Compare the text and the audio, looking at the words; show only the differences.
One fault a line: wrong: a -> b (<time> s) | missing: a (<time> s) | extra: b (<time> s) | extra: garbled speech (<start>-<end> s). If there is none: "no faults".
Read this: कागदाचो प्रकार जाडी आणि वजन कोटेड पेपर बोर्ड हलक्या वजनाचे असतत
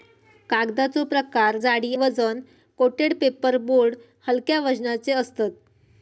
missing: आणि (1.9 s)